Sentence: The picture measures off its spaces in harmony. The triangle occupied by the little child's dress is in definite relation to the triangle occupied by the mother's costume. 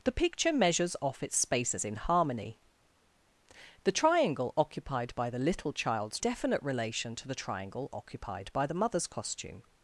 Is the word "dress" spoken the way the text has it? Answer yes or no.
no